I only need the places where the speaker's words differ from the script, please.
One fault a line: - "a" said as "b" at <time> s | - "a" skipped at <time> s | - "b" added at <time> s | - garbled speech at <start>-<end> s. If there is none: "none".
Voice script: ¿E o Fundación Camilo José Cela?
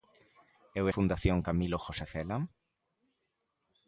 none